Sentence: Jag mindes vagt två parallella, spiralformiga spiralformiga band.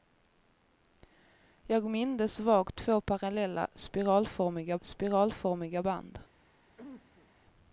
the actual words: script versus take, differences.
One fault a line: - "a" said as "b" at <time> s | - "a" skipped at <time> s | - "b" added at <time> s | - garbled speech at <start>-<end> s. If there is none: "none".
none